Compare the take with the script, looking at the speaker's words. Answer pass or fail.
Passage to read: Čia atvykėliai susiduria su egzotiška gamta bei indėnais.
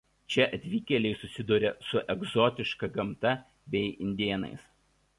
pass